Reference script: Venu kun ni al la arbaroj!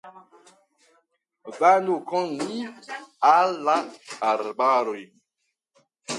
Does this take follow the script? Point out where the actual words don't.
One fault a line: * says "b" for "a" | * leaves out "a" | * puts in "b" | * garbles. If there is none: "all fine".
all fine